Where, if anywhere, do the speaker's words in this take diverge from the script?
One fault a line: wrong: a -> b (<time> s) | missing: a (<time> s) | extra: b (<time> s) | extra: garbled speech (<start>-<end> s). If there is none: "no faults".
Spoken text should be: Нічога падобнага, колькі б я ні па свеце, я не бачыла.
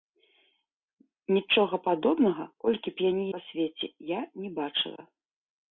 no faults